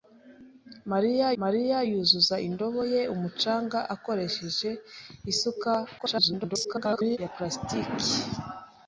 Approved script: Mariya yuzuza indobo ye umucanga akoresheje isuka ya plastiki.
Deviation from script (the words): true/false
true